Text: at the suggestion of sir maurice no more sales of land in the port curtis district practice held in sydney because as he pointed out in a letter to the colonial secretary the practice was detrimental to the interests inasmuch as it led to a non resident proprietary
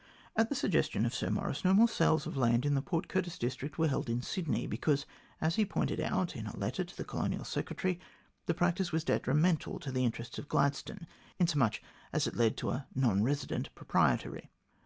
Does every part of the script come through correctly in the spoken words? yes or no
no